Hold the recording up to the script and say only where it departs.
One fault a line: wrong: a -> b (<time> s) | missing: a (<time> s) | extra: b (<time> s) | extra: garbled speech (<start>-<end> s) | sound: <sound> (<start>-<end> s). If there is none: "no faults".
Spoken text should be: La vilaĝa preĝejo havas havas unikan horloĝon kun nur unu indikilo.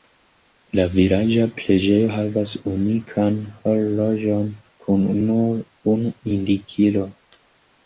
missing: havas (2.5 s)